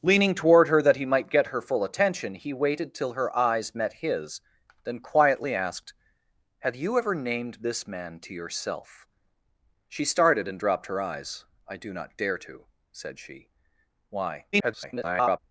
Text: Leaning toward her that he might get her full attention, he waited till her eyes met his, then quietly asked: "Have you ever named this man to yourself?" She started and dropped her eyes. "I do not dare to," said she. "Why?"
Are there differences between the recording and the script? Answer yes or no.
yes